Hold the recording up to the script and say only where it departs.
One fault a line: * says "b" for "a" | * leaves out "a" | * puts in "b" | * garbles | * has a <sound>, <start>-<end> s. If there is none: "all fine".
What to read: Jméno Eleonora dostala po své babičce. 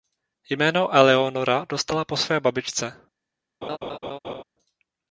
* has a laugh, 3.6-4.4 s